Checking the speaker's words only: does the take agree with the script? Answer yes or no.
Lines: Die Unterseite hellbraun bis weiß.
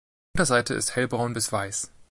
no